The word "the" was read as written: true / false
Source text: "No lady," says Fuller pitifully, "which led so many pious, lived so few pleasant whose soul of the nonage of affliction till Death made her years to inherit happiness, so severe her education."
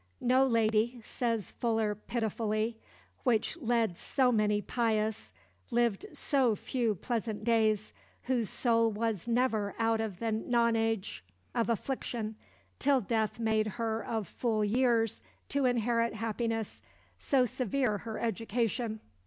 true